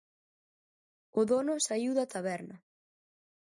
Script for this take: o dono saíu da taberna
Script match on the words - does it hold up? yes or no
yes